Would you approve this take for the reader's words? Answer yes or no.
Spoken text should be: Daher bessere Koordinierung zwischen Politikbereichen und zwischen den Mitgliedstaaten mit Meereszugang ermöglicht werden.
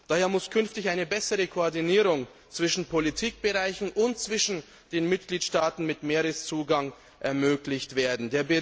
no